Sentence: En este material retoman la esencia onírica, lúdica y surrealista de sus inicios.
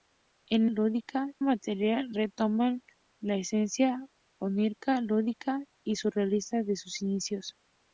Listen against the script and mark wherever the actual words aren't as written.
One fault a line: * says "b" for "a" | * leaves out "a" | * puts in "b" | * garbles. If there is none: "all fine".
* says "lúdica" for "este"